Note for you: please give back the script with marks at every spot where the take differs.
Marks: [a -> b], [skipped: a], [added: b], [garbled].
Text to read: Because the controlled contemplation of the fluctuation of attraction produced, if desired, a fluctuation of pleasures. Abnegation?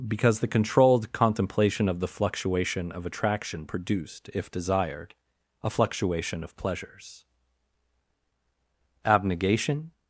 Because the controlled contemplation of the fluctuation of attraction produced, if desired, a fluctuation of pleasures. Abnegation?